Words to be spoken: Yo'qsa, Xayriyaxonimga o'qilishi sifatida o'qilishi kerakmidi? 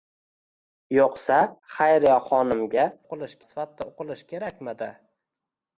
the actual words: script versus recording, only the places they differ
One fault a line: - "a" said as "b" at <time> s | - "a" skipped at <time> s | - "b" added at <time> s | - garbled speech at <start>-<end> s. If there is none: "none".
none